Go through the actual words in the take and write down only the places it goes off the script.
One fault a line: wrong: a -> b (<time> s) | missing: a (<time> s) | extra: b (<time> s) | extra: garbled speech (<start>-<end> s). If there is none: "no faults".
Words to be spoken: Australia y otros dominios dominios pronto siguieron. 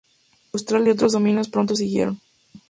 missing: dominios (1.5 s)